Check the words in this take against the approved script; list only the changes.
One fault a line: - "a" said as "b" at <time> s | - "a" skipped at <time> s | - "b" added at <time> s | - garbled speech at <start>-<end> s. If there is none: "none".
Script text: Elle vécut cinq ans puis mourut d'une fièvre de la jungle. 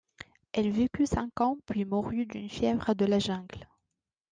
none